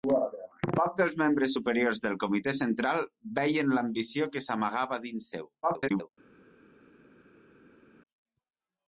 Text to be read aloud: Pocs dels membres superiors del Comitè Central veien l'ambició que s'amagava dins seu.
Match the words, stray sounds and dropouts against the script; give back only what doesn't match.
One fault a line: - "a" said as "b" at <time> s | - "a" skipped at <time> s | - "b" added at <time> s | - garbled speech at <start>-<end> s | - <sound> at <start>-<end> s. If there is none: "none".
- garbled speech at 5.6-6.1 s